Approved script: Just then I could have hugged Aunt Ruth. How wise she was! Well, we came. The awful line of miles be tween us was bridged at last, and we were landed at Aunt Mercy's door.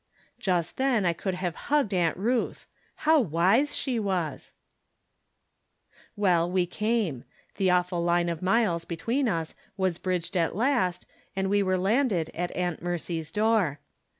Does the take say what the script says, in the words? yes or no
yes